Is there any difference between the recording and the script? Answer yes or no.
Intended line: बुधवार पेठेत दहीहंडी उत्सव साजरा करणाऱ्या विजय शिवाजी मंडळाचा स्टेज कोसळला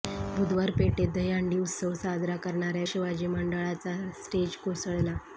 yes